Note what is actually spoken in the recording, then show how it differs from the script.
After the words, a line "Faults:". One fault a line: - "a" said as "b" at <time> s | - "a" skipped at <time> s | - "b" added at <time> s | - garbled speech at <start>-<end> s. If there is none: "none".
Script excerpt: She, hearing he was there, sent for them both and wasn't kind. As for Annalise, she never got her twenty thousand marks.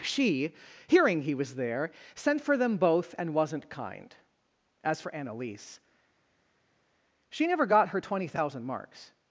She, hearing he was there, sent for them both and wasn't kind. As for Annalise, she never got her twenty thousand marks.
Faults:
none